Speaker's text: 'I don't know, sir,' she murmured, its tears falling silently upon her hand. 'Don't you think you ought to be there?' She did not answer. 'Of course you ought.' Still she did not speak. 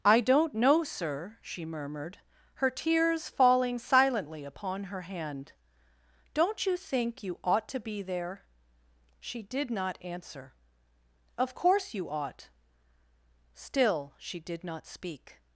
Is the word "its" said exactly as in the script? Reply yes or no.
no